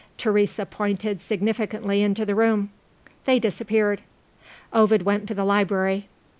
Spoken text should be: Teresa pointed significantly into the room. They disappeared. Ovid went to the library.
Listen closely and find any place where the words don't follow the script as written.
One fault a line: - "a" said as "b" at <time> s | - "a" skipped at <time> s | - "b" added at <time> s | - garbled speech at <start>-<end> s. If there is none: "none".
none